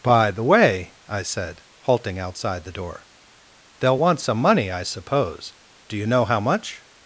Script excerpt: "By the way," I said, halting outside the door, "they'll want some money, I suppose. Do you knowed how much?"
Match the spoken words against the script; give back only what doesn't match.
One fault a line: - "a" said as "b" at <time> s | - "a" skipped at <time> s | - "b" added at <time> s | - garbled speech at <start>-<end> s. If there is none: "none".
- "knowed" said as "know" at 6.1 s